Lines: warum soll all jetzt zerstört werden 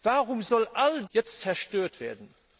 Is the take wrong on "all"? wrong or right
right